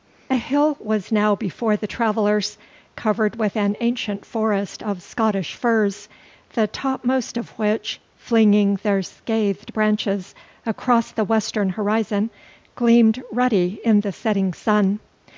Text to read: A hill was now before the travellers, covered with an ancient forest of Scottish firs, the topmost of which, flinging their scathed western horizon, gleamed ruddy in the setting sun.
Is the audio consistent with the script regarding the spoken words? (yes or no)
no